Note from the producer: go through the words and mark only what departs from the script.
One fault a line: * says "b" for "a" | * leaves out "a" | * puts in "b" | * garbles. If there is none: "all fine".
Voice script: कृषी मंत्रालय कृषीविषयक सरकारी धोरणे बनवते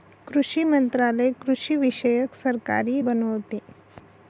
* leaves out "धोरणे"